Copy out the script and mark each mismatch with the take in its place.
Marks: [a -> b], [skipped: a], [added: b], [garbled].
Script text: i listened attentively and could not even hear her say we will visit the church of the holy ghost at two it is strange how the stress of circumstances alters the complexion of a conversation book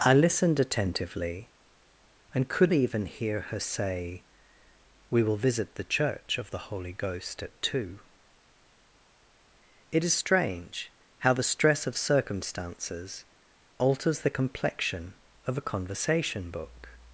i listened attentively and could [skipped: not] even hear her say we will visit the church of the holy ghost at two it is strange how the stress of circumstances alters the complexion of a conversation book